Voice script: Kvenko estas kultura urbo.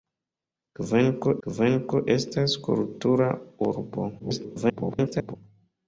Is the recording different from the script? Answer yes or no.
yes